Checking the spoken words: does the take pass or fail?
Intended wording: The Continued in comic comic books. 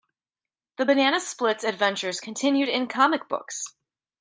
fail